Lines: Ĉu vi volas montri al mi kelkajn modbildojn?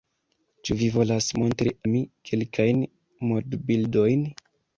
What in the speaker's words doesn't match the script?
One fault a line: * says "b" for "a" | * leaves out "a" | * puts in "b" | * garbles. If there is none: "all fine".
* leaves out "al"